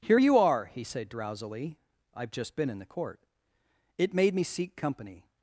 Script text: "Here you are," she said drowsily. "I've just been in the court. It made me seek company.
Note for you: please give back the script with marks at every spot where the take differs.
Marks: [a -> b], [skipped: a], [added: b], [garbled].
"Here you are," [she -> he] said drowsily. "I've just been in the court. It made me seek company.